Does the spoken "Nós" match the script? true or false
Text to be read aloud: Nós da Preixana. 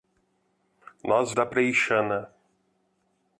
true